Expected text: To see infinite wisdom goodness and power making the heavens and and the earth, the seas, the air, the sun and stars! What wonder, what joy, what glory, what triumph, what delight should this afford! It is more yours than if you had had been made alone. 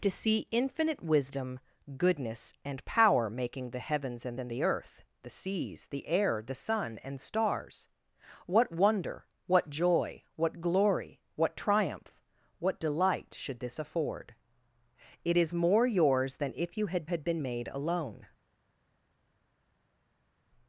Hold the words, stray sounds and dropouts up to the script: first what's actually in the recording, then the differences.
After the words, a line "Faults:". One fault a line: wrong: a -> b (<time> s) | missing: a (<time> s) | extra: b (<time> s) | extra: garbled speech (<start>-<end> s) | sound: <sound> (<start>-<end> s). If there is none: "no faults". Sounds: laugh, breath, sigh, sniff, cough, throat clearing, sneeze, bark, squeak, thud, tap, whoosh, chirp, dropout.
To see infinite wisdom goodness and power making the heavens and and the earth, the seas, the air, the sun and stars! What wonder, what joy, what glory, what triumph, what delight should this afford! It is more yours than if you had had been made alone.
Faults:
no faults